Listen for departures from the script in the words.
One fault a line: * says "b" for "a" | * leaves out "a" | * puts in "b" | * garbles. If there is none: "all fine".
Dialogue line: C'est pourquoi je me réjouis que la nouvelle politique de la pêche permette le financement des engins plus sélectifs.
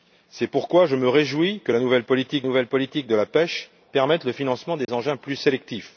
* puts in "nouvelle politique"